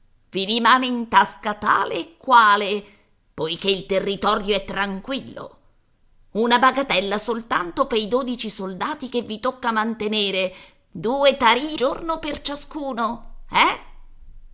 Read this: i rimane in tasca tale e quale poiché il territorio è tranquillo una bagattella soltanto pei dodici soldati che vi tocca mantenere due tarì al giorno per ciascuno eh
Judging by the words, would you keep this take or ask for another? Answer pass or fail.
fail